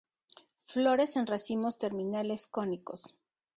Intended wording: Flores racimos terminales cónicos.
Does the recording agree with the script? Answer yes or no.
no